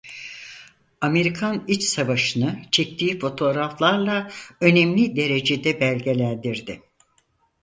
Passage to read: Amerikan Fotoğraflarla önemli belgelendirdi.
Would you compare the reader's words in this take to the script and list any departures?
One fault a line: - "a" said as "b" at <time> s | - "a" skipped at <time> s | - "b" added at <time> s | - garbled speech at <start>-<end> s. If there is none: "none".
- "İç Savaşı'nı çektiği" added at 1.7 s
- "derecede" added at 5.2 s